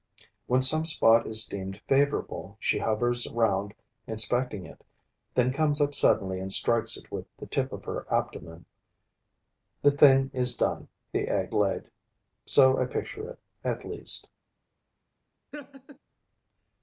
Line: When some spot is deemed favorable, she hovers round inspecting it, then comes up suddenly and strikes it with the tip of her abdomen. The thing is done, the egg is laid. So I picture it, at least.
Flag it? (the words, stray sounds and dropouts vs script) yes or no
yes